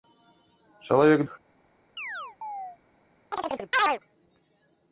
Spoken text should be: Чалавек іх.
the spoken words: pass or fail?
pass